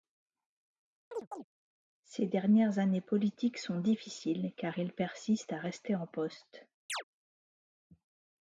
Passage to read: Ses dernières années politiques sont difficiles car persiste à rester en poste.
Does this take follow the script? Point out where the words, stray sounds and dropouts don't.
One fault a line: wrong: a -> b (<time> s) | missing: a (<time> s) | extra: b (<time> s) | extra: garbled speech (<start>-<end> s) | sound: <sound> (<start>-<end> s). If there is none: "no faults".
sound: chirp (1.1-1.5 s)
extra: il (4.8 s)
sound: chirp (6.9-7.0 s)